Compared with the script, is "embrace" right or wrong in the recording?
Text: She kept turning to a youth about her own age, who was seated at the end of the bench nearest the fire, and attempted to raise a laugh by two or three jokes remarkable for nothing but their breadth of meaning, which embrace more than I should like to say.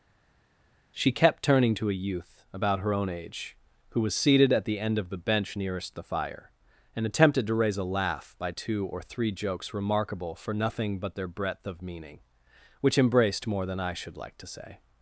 wrong